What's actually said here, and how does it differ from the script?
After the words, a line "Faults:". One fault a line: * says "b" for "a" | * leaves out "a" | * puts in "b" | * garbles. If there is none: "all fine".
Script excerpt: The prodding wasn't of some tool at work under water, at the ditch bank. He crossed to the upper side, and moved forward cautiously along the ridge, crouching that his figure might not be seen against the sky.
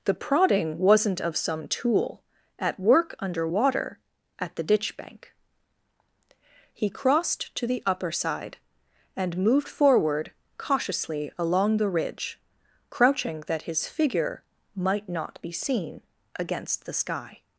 The prodding wasn't of some tool at work under water, at the ditch bank. He crossed to the upper side, and moved forward cautiously along the ridge, crouching that his figure might not be seen against the sky.
Faults:
all fine